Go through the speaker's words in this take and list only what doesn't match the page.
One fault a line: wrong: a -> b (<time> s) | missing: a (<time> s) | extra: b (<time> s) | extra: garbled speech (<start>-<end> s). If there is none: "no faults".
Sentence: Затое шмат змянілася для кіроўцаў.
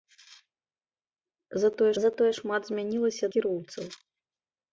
extra: затое (2.0 s)
missing: для (3.2 s)